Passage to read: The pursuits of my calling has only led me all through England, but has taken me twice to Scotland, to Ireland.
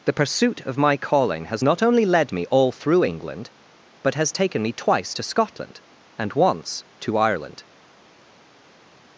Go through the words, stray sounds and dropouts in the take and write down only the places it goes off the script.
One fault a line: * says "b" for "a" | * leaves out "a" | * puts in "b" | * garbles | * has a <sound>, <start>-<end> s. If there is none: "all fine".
* says "pursuit" for "pursuits"
* puts in "not"
* puts in "and once"